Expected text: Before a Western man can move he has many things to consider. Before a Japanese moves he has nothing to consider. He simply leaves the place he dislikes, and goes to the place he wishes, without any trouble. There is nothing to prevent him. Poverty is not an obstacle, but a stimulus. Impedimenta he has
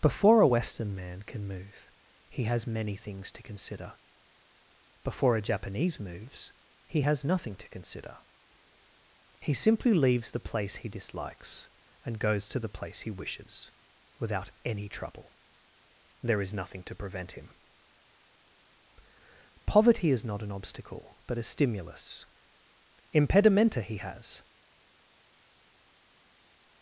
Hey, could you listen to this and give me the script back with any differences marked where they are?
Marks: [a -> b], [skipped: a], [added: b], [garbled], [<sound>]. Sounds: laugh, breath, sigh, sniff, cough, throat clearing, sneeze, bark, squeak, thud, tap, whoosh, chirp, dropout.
Before a Western man can move he has many things to consider. Before a Japanese moves he has nothing to consider. He simply leaves the place he dislikes, and goes to the place he wishes, without any trouble. There is nothing to prevent him. Poverty is not an obstacle, but a stimulus. Impedimenta he has